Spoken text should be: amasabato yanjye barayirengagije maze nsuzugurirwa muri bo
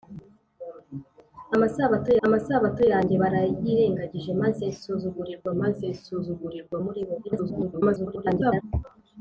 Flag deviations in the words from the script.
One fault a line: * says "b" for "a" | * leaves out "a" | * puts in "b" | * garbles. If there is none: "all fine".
* puts in "amasabato"
* puts in "maze nsuzugurirwa"
* garbles